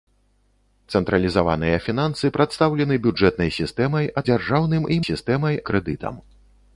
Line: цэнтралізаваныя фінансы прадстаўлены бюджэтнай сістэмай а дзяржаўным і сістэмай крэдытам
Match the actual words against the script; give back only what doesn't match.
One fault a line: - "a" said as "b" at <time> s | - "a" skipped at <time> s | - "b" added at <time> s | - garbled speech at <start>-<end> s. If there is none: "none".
none